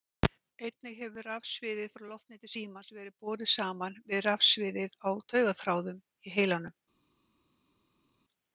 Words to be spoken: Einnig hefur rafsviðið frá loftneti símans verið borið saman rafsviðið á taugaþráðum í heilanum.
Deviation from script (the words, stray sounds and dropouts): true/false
true